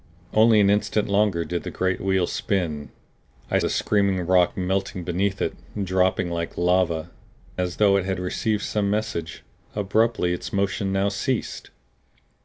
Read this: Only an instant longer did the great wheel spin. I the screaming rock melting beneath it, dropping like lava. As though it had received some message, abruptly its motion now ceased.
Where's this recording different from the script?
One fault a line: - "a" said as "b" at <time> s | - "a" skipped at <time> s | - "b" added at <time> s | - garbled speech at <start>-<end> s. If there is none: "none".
none